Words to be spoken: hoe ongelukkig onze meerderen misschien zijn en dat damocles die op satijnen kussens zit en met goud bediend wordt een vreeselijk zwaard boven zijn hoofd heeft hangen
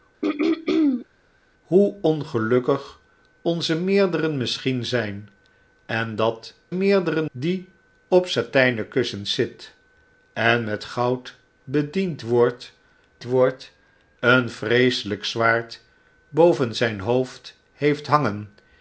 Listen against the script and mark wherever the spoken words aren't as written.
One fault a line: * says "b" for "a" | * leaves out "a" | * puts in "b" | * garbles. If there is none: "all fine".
* says "meerderen" for "damocles"
* puts in "wordt"